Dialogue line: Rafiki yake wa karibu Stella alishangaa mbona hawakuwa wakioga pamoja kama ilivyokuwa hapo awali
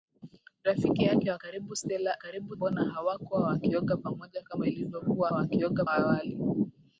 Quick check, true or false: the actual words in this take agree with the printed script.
false